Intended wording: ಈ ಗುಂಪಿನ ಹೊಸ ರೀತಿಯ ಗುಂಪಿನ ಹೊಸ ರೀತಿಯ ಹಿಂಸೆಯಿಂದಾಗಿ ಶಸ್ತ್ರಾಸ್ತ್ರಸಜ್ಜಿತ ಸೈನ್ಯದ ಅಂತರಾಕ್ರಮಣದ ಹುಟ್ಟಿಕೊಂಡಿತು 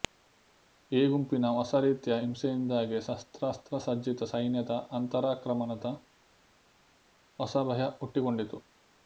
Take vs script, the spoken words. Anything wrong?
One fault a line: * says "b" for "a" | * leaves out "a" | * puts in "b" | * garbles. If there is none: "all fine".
* leaves out "ಗುಂಪಿನ ಹೊಸ ರೀತಿಯ"
* puts in "ಹೊಸ ಭಯ"